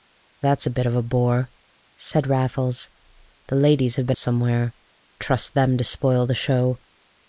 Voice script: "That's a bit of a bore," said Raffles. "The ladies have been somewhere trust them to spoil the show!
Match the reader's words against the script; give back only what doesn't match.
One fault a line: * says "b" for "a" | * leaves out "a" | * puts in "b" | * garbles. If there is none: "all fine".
all fine